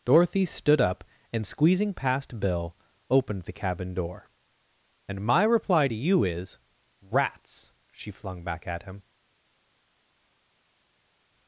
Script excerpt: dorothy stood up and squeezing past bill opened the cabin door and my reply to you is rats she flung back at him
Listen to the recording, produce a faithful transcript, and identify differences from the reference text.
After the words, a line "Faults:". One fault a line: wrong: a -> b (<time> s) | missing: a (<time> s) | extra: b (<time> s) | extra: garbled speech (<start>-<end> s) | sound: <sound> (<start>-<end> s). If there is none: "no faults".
dorothy stood up and squeezing past bill opened the cabin door and my reply to you is rats she flung back at him
Faults:
no faults